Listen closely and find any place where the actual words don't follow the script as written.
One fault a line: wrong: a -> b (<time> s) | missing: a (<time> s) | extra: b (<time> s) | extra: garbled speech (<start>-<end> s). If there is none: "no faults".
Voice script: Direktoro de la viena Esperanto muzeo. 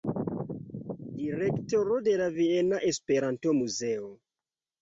no faults